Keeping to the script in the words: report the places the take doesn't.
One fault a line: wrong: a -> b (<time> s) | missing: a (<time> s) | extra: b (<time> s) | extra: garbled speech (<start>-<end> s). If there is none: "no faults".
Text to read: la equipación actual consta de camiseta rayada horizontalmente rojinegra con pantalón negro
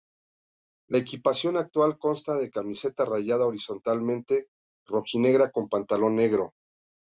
no faults